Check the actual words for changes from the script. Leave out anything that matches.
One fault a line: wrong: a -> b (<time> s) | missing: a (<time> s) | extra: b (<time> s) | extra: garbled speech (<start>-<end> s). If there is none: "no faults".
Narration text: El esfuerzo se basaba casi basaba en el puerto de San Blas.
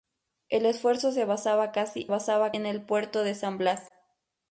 no faults